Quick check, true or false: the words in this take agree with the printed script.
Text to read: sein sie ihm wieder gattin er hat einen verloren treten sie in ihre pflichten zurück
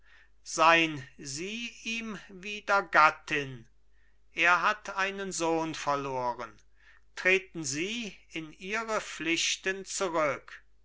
false